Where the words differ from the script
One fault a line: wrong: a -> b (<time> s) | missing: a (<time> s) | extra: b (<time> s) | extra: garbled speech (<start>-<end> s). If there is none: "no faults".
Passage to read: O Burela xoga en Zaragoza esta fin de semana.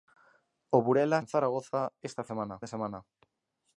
missing: xoga (1.2 s)
wrong: fin -> semana (2.3 s)